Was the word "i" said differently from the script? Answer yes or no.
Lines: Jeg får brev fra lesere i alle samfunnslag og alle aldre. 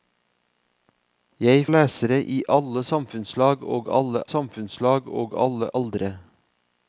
yes